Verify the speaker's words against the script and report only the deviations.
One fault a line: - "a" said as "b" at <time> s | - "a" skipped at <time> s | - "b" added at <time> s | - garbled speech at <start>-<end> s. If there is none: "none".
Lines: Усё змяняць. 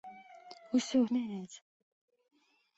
none